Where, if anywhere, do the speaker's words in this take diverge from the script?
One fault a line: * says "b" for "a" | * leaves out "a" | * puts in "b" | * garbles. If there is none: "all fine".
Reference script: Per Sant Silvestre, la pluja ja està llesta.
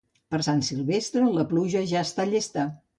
all fine